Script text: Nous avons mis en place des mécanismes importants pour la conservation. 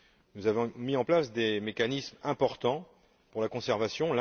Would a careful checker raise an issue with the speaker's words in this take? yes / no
no